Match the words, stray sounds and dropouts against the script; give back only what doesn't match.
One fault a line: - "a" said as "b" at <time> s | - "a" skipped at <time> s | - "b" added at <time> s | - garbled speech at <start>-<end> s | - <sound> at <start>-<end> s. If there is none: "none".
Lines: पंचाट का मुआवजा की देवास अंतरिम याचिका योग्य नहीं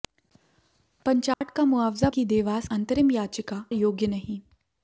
- dropout at 1.3-1.4 s